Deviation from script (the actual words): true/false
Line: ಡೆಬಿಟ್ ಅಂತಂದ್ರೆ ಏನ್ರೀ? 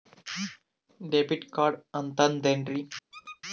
true